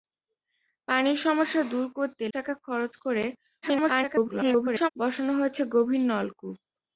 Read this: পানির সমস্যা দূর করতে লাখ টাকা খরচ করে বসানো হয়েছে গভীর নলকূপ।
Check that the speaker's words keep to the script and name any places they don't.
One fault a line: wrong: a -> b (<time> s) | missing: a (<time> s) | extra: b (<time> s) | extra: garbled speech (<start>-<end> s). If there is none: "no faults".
missing: লাখ (2.2 s)
extra: garbled speech (3.6-4.9 s)